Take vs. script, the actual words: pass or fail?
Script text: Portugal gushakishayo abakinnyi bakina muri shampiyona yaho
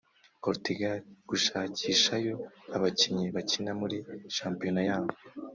pass